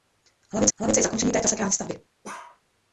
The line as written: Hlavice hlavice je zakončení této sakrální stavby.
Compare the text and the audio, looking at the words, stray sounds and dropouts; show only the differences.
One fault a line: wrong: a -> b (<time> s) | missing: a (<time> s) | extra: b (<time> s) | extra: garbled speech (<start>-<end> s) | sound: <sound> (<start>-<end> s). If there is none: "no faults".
sound: bark (2.2-2.6 s)